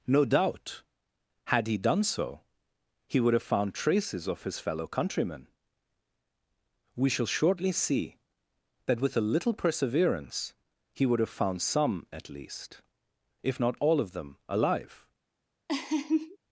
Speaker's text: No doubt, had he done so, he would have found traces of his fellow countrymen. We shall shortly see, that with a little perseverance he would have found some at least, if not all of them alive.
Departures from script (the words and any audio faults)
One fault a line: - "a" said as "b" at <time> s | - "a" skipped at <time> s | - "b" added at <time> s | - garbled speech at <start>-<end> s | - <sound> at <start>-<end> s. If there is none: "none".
- laugh at 15.7-16.4 s